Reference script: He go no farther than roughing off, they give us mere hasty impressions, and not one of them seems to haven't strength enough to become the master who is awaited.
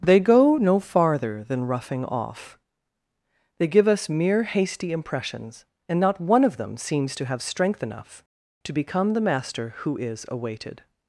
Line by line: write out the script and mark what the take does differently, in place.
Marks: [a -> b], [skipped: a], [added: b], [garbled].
[He -> They] go no farther than roughing off, they give us mere hasty impressions, and not one of them seems to [haven't -> have] strength enough to become the master who is awaited.